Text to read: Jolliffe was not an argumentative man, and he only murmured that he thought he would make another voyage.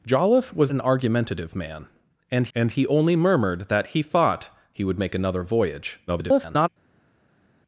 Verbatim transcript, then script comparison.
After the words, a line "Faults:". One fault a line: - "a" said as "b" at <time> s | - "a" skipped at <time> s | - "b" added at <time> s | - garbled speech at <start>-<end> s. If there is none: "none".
Jolliffe was an argumentative man, and and he only murmured that he thought he would make another voyage. [garbled]
Faults:
- "not" skipped at 0.7 s
- "and" added at 2.5 s
- garbled speech at 6.1-6.7 s